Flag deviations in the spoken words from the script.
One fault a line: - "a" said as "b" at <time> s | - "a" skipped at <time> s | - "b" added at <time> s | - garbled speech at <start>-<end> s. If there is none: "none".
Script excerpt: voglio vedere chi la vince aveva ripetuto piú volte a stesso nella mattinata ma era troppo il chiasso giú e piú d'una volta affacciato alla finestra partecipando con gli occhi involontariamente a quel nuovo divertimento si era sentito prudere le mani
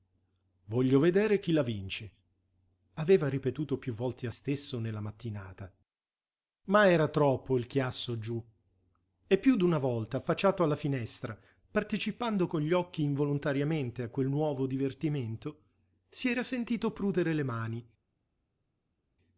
none